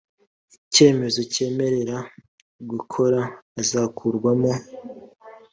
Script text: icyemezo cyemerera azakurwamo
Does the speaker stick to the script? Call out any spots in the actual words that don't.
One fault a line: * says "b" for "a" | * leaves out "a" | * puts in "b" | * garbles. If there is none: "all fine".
* puts in "gukora"